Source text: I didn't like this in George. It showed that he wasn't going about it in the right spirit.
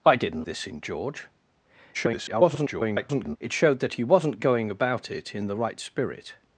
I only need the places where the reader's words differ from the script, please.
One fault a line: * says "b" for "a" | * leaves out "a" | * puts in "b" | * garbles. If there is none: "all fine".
* leaves out "like"
* garbles